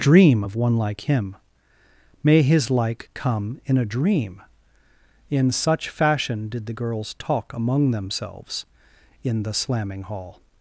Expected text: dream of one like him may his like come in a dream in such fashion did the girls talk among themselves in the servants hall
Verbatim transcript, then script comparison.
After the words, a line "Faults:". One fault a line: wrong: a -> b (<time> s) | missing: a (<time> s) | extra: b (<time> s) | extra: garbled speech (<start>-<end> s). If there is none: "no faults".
dream of one like him may his like come in a dream in such fashion did the girls talk among themselves in the slamming hall
Faults:
wrong: servants -> slamming (9.5 s)